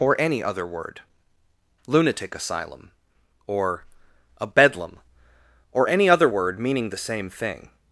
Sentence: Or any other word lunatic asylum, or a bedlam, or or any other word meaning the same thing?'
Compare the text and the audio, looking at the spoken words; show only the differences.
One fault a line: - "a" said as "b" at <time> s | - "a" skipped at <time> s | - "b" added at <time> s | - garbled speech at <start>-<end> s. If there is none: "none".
- "or" skipped at 5.9 s